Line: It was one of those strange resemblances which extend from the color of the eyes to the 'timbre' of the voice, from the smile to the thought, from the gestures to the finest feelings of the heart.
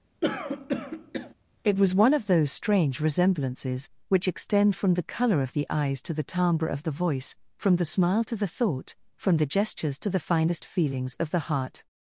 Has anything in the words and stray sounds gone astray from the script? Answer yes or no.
yes